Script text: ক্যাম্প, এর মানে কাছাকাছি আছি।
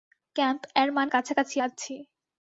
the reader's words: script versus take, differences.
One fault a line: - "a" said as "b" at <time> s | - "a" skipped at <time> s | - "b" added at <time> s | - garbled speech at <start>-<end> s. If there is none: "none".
none